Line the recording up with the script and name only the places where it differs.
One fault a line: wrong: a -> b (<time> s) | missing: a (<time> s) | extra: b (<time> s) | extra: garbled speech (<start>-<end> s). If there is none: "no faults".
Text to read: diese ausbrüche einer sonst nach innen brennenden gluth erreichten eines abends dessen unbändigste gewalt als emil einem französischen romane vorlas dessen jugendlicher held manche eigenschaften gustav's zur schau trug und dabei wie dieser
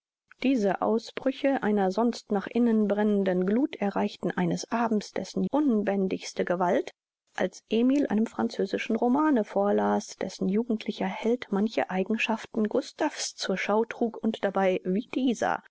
no faults